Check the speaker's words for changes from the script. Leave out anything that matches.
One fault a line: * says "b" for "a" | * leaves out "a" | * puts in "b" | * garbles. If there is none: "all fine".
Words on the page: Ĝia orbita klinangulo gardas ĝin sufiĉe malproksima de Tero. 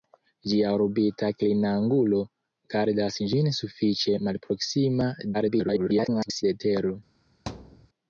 * garbles